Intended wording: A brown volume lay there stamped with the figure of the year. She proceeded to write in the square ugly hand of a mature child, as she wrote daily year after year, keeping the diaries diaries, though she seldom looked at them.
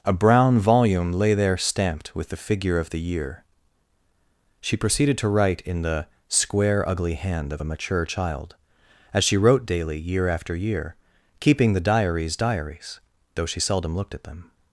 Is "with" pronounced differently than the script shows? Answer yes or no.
no